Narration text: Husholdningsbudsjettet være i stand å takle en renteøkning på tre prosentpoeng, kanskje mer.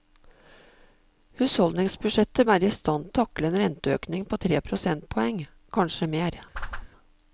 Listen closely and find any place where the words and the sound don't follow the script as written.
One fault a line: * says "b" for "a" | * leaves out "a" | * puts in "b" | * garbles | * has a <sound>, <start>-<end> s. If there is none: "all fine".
* has a whoosh, 6.5-6.9 s